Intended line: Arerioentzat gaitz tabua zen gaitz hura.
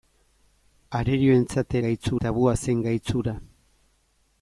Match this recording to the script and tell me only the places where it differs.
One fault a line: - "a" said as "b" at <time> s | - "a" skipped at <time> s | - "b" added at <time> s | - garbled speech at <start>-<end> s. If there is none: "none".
none